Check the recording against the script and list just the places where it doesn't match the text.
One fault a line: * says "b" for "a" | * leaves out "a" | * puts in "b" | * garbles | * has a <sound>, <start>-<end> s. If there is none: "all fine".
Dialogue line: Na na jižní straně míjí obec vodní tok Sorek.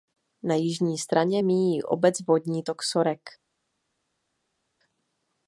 * leaves out "na"